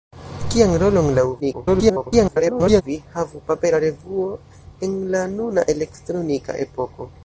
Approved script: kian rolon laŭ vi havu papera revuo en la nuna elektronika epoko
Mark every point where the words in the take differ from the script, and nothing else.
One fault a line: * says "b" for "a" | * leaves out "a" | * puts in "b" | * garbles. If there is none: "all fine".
* garbles